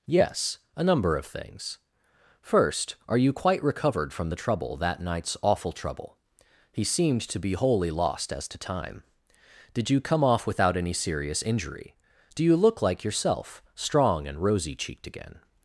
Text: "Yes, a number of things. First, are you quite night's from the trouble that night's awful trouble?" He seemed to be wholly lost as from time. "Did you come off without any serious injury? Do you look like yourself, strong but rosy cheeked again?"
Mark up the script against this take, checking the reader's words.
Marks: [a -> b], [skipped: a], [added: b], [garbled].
"Yes, a number of things. First, are you quite [night's -> recovered] from the trouble that night's awful trouble?" He seemed to be wholly lost as [from -> to] time. "Did you come off without any serious injury? Do you look like yourself, strong [but -> and] rosy cheeked again?"